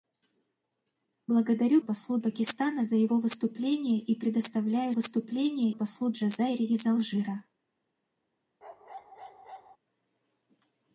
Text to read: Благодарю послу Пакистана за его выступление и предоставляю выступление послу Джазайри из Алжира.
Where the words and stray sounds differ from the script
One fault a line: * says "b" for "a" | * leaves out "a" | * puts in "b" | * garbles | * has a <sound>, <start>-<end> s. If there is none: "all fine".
* has a bark, 8.6-9.8 s